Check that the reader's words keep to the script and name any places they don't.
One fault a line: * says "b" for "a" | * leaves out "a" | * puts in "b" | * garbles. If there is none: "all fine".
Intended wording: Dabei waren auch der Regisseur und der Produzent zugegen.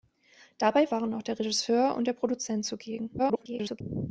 * garbles